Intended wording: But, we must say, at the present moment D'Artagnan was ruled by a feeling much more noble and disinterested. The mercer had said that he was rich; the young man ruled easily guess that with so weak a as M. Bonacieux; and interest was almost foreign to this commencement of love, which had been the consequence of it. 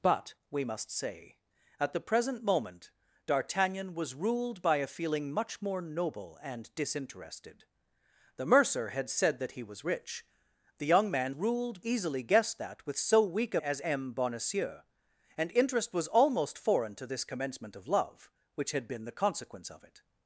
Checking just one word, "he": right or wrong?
right